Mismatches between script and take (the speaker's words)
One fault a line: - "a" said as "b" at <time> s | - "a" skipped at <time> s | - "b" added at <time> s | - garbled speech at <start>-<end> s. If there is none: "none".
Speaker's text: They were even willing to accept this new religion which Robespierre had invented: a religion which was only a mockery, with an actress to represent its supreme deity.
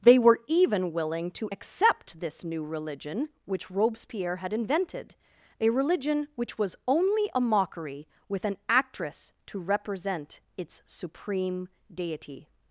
none